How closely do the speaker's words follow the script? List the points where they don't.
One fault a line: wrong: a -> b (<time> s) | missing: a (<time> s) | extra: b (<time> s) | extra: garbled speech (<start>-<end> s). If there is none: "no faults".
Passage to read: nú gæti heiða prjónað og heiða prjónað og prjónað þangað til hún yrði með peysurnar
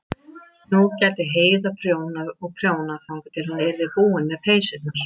missing: heiða (2.6 s)
missing: og prjónað (3.1 s)
extra: búin (4.0 s)